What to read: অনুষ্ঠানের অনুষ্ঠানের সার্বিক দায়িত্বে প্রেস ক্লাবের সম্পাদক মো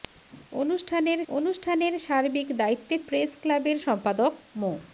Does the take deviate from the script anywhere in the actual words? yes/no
no